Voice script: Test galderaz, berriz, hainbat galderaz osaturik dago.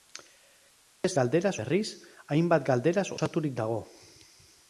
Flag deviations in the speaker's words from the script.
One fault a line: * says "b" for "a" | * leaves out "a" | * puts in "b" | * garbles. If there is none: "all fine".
all fine